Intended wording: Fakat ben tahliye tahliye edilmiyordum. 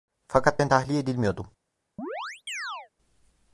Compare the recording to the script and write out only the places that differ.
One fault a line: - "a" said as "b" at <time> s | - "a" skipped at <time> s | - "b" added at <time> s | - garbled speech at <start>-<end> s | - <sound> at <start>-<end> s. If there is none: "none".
- "tahliye" skipped at 1.0 s
- chirp at 2.0-2.9 s